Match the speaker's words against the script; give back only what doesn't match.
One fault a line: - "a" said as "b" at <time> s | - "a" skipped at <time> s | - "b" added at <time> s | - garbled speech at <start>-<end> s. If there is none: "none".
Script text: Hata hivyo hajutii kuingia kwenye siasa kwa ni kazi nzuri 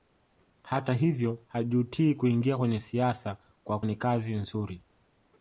none